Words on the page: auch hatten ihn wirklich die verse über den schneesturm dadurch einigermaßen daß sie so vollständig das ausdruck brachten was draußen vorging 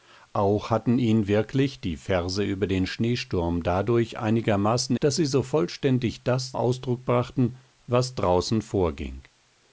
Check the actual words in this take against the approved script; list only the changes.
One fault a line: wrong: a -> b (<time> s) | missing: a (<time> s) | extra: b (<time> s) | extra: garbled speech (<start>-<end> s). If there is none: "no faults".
no faults